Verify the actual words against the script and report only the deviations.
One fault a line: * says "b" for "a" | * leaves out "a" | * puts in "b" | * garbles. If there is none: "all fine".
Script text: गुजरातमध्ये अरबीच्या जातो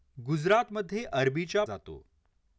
all fine